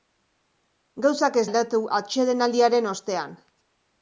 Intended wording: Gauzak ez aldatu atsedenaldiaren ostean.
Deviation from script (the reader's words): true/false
false